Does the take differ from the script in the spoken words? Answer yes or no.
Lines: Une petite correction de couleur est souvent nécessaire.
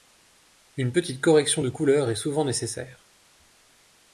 no